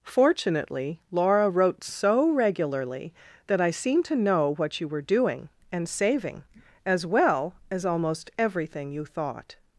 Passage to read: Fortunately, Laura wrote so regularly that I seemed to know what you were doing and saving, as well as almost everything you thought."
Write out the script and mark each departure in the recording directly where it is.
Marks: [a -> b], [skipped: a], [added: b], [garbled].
Fortunately, Laura wrote so regularly that I seemed to know what you were doing and saving, as well as almost everything you thought."